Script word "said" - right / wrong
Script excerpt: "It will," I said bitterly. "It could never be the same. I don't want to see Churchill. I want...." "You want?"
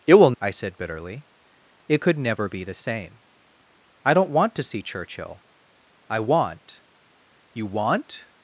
right